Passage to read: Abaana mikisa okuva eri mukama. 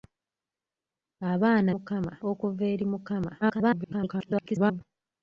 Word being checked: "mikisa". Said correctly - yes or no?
no